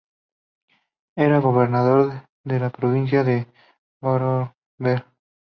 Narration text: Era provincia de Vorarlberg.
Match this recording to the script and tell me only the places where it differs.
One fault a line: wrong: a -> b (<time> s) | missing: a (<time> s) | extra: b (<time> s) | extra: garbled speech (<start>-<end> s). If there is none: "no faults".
extra: gobernador de la (1.4 s)